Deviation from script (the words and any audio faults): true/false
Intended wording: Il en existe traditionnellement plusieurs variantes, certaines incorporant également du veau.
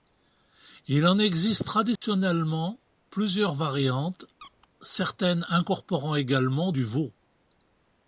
true